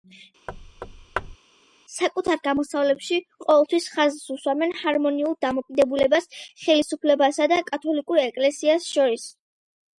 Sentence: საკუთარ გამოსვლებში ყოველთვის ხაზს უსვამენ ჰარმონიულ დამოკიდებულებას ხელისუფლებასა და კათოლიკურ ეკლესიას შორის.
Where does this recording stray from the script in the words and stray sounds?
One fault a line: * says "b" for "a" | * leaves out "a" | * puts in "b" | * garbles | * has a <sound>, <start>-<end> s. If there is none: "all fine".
* has a thud, 0.5-1.4 s